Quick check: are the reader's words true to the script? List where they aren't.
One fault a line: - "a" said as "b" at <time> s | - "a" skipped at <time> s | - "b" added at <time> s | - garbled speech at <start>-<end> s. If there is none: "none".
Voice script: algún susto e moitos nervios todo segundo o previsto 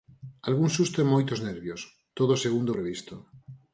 none